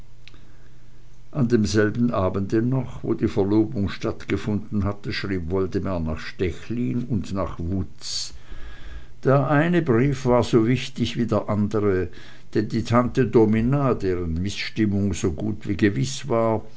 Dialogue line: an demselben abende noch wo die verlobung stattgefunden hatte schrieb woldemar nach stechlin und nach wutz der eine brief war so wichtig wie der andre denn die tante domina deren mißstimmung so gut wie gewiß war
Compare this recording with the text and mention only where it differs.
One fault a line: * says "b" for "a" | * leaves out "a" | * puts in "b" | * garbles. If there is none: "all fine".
all fine